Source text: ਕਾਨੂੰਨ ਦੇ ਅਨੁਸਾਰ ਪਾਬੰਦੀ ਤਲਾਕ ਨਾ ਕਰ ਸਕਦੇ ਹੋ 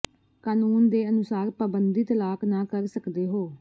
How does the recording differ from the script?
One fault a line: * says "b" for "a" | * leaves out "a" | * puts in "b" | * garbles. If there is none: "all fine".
all fine